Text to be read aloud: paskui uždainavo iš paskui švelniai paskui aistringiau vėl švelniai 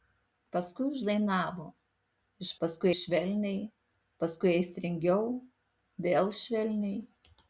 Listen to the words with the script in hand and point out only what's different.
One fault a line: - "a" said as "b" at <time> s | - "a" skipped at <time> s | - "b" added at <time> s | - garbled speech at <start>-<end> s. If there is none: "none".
none